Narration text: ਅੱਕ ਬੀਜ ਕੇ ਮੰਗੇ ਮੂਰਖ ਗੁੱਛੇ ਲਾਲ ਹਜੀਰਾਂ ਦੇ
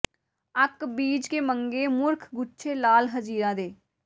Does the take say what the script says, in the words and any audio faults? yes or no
yes